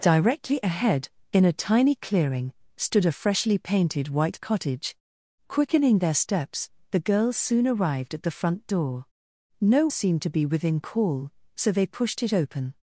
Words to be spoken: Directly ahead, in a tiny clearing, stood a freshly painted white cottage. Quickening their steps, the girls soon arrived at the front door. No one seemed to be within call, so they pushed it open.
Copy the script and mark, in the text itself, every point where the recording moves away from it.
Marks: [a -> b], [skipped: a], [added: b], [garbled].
Directly ahead, in a tiny clearing, stood a freshly painted white cottage. Quickening their steps, the girls soon arrived at the front door. No [skipped: one] seemed to be within call, so they pushed it open.